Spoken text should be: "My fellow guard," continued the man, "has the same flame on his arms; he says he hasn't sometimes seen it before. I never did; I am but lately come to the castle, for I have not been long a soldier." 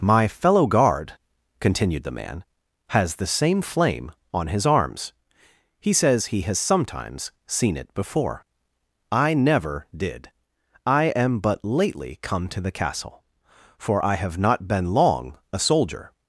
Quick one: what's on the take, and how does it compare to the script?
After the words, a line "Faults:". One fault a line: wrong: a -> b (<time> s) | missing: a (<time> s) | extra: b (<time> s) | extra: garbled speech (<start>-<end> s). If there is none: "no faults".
"My fellow guard," continued the man, "has the same flame on his arms; he says he has sometimes seen it before. I never did; I am but lately come to the castle, for I have not been long a soldier."
Faults:
wrong: hasn't -> has (6.4 s)